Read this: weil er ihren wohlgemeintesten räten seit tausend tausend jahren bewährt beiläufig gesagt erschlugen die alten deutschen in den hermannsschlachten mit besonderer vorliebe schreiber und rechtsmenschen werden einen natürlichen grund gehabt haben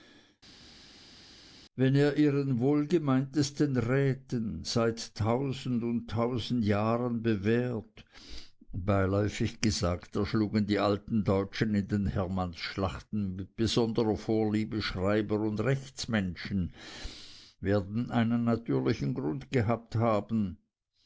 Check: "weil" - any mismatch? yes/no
yes